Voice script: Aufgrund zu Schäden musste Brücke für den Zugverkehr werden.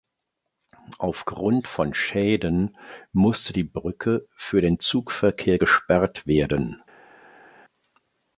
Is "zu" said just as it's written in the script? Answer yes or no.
no